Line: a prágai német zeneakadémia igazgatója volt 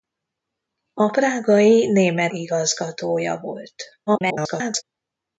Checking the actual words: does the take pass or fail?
fail